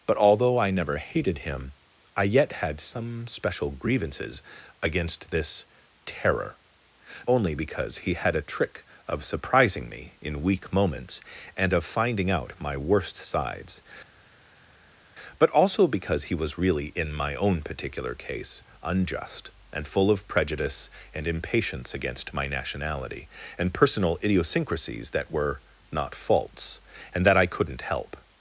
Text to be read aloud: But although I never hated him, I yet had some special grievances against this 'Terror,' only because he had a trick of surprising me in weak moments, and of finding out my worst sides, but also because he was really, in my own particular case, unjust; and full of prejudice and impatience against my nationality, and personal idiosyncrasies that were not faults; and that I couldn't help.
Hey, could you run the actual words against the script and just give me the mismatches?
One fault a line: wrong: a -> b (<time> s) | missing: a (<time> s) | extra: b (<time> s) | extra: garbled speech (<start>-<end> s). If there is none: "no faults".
no faults